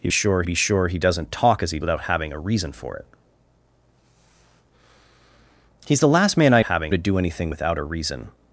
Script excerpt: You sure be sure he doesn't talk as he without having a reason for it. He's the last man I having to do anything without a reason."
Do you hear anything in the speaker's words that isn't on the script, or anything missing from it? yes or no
no